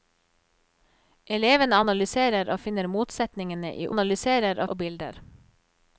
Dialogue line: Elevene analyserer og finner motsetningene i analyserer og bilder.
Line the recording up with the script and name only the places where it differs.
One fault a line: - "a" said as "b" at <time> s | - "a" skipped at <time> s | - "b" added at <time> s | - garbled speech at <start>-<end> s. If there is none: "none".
none